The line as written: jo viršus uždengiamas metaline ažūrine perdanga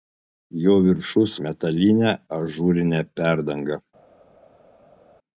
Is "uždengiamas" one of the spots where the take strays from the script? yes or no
yes